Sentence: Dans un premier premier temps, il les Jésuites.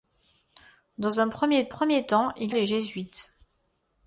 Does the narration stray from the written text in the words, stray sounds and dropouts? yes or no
no